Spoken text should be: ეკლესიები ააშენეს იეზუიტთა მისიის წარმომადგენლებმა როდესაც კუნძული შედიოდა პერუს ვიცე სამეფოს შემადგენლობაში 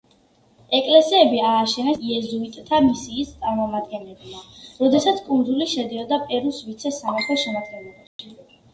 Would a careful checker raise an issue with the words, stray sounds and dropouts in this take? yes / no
yes